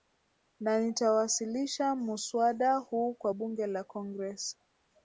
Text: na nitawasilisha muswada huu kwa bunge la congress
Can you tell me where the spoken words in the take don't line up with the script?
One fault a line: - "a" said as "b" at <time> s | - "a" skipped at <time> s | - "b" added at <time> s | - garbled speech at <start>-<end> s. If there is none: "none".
none